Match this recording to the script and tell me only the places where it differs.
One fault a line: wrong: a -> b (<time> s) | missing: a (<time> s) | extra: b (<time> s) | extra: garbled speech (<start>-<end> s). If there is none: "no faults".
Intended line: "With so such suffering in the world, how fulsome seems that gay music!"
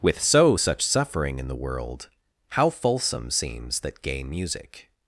no faults